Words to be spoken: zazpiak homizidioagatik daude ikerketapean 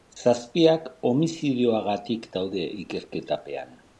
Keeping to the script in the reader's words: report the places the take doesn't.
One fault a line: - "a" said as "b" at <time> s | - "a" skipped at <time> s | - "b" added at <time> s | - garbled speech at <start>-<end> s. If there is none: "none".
none